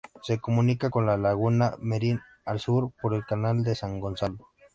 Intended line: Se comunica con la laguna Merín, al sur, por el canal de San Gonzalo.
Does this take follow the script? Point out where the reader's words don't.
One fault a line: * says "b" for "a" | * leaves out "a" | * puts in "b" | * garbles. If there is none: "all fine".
all fine